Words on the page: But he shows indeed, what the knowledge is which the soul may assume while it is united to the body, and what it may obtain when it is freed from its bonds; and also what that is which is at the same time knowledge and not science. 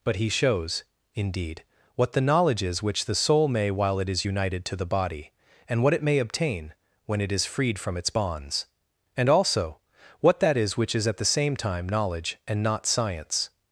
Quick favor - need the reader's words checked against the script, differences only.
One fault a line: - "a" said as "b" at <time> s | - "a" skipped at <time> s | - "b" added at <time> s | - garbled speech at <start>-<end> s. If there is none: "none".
- "assume" skipped at 3.7 s